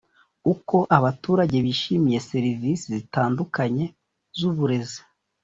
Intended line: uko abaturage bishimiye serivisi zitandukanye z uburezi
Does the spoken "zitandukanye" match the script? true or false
true